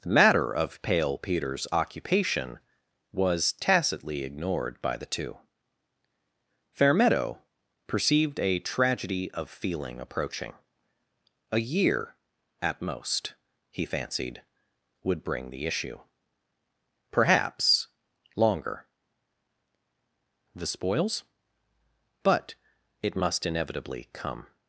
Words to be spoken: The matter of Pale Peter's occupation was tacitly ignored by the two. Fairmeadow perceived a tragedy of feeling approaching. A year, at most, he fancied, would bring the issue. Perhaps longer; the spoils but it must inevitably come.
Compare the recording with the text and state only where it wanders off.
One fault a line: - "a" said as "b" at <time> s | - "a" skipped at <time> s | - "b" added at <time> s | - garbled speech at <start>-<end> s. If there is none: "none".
none